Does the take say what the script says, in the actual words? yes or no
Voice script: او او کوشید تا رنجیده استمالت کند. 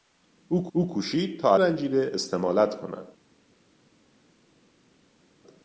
yes